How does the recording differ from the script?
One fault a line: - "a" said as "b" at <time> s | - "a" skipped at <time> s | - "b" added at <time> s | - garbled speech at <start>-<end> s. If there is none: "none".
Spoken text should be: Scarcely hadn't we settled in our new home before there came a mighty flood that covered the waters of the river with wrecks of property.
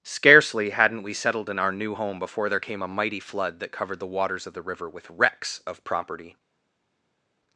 none